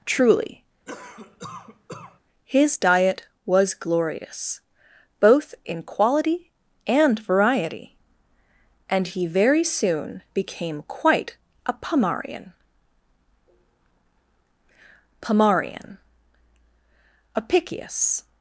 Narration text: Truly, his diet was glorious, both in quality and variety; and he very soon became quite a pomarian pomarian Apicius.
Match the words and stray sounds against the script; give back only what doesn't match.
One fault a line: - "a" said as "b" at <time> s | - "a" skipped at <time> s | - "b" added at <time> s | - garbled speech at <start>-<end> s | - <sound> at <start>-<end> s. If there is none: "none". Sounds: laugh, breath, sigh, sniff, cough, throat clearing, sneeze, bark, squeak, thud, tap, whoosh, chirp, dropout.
- cough at 0.9-2.2 s